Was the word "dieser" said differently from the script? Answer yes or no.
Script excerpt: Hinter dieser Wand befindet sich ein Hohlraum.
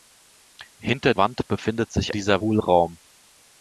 yes